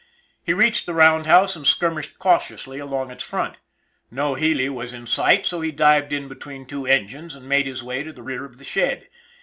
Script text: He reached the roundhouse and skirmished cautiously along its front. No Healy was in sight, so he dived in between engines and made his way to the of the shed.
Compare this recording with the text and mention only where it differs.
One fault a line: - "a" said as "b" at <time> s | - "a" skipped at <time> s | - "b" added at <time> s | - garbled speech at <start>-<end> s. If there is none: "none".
- "two" added at 6.7 s
- "rear" added at 8.2 s